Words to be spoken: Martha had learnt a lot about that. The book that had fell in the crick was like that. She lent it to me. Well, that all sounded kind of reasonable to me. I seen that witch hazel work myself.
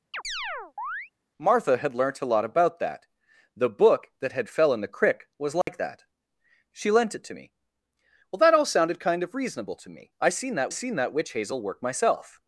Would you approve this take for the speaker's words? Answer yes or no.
no